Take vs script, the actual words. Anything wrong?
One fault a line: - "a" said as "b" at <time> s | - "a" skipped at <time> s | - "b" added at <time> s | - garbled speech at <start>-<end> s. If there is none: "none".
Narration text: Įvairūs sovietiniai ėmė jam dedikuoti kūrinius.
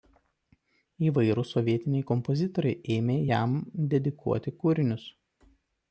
- "kompozitoriai" added at 2.1 s